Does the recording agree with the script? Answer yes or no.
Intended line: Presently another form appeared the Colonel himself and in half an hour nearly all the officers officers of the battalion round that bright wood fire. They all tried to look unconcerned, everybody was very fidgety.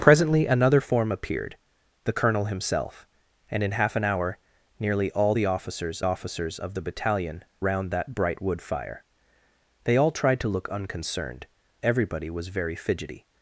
yes